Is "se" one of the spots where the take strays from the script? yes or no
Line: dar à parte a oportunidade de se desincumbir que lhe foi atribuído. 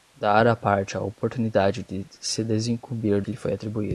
no